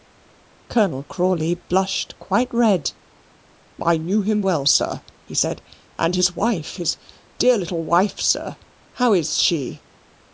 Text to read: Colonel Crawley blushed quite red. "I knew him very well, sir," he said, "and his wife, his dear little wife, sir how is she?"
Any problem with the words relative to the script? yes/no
yes